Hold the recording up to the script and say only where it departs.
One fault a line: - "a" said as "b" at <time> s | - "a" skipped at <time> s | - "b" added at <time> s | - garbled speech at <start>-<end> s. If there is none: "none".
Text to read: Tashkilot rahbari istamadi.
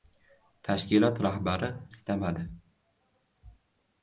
none